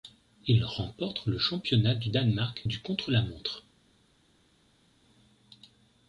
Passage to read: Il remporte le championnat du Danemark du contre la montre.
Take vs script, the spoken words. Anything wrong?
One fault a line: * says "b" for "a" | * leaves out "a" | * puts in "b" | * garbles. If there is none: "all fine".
all fine